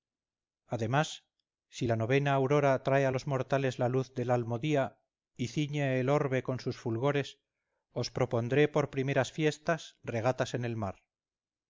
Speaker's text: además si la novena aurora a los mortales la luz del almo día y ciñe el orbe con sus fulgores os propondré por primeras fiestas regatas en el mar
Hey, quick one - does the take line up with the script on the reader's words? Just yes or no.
no